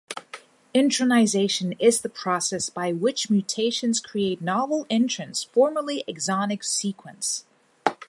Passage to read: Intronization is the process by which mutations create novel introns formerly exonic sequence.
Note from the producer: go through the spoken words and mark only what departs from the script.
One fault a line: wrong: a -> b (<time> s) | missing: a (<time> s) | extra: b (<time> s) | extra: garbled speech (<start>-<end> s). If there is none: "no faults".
no faults